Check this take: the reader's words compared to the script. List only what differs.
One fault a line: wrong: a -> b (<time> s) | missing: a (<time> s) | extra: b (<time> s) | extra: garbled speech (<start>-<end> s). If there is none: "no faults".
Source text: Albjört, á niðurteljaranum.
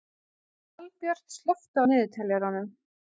extra: slökktu (1.4 s)